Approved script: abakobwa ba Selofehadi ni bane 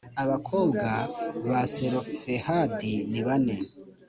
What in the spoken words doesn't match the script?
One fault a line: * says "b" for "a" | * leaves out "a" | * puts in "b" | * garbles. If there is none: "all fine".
all fine